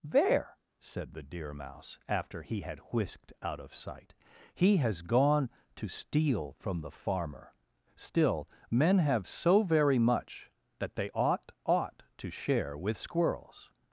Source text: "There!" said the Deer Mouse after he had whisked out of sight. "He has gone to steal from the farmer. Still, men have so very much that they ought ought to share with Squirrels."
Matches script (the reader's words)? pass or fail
pass